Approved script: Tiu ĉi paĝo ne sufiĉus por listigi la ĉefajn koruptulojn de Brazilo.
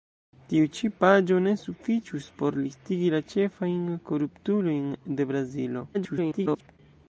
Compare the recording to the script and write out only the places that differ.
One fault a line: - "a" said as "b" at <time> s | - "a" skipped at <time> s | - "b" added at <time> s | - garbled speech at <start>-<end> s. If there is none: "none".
- garbled speech at 5.9-6.8 s